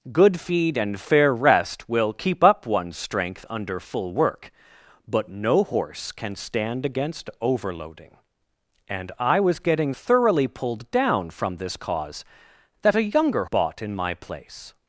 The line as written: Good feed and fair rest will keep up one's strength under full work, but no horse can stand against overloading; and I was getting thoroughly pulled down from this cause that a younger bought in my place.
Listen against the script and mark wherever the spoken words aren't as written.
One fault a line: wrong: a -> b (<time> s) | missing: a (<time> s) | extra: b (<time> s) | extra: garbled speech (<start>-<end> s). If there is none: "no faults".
no faults